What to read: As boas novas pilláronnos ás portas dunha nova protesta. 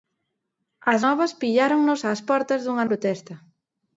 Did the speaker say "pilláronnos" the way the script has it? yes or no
yes